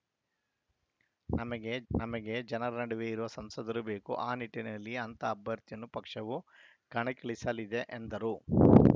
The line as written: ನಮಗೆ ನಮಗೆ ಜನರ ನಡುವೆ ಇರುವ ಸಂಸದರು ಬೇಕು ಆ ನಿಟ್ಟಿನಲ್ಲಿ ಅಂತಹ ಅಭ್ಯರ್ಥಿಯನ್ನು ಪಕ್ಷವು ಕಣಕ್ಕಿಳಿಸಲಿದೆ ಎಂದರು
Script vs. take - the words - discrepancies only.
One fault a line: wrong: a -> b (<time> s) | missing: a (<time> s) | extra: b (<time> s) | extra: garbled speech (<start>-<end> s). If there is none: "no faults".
no faults